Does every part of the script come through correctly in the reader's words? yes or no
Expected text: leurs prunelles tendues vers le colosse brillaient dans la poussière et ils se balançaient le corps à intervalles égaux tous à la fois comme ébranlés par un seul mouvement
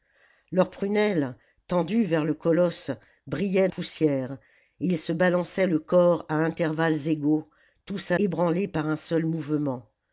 no